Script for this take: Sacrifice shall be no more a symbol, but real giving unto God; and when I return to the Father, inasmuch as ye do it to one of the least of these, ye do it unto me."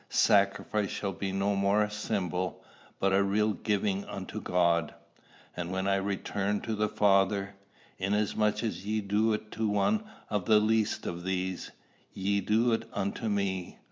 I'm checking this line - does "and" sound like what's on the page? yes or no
yes